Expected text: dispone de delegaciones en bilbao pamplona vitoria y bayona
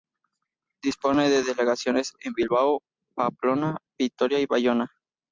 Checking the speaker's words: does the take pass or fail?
pass